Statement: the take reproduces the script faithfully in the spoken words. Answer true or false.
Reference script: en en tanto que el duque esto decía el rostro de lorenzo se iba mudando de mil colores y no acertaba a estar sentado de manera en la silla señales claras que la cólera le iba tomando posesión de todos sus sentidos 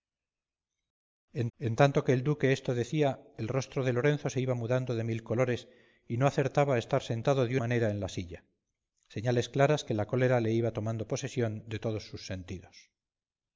true